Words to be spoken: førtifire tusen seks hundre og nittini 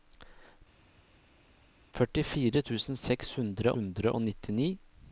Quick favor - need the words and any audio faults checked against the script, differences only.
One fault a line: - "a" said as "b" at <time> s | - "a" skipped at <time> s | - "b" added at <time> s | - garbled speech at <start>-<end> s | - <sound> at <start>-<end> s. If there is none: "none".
- "hundre" added at 3.8 s